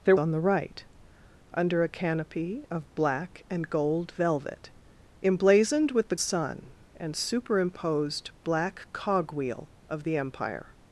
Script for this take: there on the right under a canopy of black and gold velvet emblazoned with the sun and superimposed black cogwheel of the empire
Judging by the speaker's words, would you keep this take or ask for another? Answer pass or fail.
pass